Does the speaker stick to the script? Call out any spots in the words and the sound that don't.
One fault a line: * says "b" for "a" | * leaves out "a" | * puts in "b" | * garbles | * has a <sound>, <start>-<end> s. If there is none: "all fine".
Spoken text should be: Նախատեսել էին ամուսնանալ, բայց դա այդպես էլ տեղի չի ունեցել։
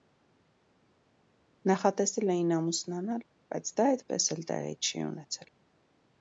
all fine